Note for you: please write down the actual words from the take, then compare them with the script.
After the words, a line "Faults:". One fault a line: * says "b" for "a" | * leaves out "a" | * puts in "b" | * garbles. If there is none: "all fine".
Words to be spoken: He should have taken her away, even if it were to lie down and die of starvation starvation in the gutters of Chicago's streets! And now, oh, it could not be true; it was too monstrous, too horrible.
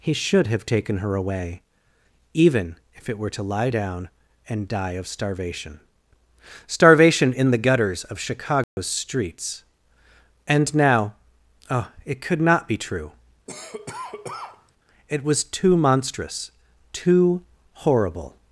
He should have taken her away, even if it were to lie down and die of starvation starvation in the gutters of Chicago's streets! And now, oh, it could not be true; it was too monstrous, too horrible.
Faults:
all fine